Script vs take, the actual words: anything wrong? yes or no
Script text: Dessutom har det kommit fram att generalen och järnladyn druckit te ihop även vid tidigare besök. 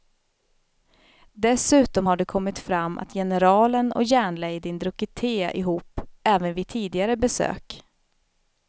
no